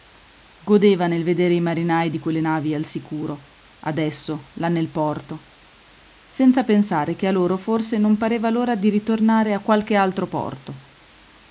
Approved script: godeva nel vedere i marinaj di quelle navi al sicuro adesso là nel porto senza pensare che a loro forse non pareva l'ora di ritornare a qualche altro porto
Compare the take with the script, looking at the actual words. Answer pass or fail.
pass